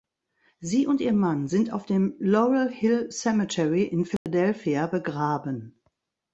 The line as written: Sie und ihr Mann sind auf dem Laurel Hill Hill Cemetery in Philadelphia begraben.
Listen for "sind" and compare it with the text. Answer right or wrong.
right